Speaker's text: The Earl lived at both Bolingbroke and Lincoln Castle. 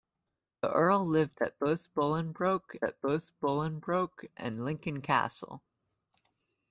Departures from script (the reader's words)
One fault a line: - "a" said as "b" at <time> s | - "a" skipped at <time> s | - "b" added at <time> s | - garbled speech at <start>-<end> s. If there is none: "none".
- "at both Bolingbroke" added at 2.8 s